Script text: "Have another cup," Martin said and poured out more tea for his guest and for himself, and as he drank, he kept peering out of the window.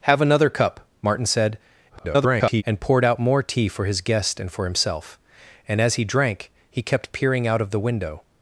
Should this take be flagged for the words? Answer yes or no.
yes